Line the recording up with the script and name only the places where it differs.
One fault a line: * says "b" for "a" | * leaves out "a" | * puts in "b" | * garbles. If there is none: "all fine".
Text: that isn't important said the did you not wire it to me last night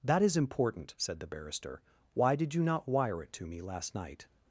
* says "is" for "isn't"
* puts in "barrister why"